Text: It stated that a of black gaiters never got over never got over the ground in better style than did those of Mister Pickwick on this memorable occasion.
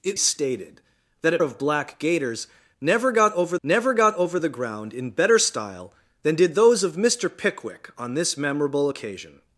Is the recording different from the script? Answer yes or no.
no